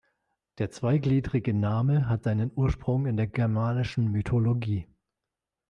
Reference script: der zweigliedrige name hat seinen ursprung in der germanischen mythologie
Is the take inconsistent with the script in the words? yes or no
no